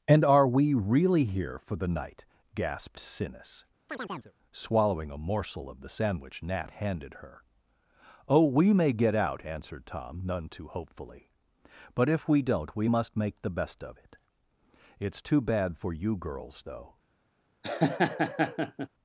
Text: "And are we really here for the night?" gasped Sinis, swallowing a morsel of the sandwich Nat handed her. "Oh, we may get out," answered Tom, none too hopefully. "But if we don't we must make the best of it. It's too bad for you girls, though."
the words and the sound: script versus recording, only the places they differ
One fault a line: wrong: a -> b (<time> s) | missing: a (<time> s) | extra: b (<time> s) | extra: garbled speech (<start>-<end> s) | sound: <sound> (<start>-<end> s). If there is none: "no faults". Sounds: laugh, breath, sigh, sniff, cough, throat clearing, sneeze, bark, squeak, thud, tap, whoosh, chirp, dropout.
sound: chirp (3.9-4.3 s)
sound: laugh (17.6-18.9 s)